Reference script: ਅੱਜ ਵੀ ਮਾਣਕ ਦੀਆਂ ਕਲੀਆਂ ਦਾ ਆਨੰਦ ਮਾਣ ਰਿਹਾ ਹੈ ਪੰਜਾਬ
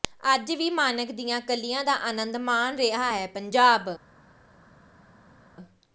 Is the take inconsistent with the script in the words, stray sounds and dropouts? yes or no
no